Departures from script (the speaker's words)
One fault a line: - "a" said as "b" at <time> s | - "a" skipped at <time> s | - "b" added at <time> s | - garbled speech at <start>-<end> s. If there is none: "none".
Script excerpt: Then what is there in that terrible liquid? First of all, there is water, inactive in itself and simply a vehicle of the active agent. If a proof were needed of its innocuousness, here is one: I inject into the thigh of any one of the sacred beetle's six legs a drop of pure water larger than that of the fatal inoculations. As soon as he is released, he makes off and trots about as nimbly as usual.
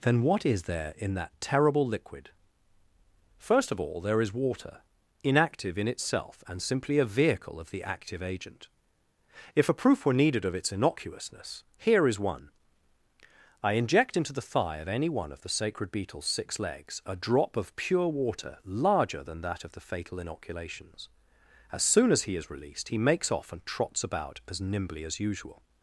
none